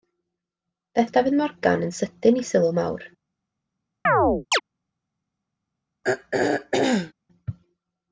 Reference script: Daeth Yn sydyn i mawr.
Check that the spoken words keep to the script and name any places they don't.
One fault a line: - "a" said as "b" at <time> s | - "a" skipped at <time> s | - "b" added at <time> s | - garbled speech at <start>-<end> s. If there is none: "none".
- "Dafydd Morgan" added at 1.2 s
- "sylw" added at 2.5 s